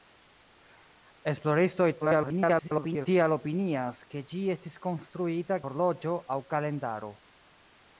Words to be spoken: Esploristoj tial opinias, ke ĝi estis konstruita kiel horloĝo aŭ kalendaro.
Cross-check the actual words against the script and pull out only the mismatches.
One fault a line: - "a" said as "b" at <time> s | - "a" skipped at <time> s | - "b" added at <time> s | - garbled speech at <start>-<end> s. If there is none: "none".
- garbled speech at 2.0-3.1 s
- "kiel" skipped at 5.6 s